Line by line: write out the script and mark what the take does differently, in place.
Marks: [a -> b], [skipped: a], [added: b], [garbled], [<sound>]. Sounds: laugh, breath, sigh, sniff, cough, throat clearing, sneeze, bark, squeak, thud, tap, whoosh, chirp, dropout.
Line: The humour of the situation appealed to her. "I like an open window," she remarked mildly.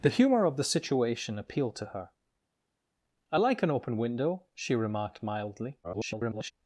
The humour of the situation appealed to her. "I like an open window," she remarked mildly. [garbled]